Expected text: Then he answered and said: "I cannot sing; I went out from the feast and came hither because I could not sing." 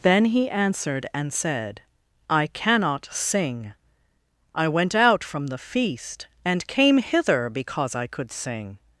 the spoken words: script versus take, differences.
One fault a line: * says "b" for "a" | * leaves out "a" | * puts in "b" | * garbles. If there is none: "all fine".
* leaves out "not"